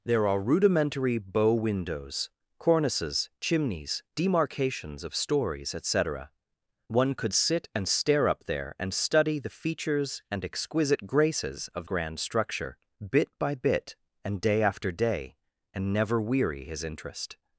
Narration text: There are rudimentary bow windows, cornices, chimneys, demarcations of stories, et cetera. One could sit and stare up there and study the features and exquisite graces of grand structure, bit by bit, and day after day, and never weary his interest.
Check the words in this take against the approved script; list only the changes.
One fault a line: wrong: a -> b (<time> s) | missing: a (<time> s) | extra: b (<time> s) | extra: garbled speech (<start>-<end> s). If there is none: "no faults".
no faults